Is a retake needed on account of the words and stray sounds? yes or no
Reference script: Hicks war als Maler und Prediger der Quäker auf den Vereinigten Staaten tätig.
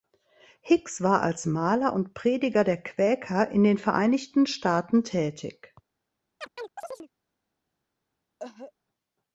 yes